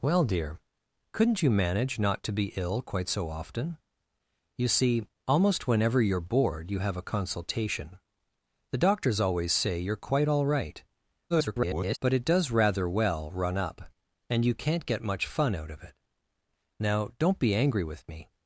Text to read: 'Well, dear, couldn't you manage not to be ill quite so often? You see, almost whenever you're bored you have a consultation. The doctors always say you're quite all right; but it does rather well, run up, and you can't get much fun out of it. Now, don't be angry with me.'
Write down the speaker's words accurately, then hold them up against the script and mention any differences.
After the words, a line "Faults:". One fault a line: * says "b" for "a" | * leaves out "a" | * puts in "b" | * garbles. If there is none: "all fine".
'Well, dear, couldn't you manage not to be ill quite so often? You see, almost whenever you're bored you have a consultation. The doctors always say you're quite all right; [garbled] but it does rather well, run up, and you can't get much fun out of it. Now, don't be angry with me.'
Faults:
* garbles